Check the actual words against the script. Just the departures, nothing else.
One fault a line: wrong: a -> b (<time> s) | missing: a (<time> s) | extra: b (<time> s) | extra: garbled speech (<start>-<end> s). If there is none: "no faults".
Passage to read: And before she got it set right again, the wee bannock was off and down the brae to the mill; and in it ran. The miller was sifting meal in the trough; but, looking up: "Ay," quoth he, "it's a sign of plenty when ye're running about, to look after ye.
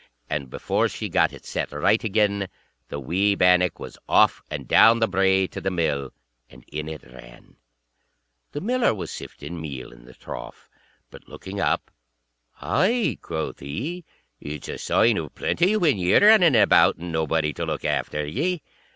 extra: and nobody (17.0 s)